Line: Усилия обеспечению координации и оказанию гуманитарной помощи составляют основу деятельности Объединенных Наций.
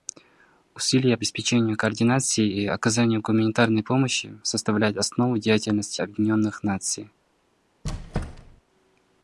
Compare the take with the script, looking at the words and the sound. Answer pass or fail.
fail